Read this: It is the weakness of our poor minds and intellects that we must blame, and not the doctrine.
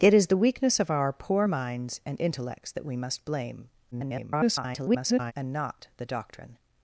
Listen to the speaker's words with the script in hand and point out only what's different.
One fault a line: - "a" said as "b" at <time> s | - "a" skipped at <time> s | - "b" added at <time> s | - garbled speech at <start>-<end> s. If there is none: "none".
- garbled speech at 3.9-5.3 s